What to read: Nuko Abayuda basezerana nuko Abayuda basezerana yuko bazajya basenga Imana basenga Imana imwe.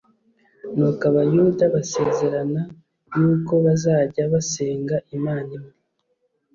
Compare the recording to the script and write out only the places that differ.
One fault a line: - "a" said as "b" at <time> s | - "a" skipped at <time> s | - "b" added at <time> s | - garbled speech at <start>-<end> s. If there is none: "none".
- "nuko Abayuda basezerana" skipped at 2.6 s
- "basenga Imana" skipped at 5.5 s